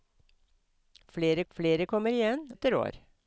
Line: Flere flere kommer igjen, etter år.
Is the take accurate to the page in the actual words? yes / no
yes